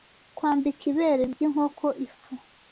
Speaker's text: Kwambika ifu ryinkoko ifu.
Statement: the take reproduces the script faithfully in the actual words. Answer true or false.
false